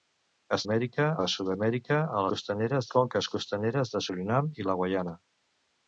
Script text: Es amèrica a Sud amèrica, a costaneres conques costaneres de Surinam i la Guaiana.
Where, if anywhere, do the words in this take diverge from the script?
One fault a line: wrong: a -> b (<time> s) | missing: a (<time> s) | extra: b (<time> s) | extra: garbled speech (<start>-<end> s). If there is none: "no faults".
no faults